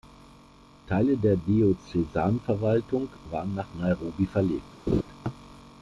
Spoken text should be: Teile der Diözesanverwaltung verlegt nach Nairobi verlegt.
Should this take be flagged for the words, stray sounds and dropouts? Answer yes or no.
yes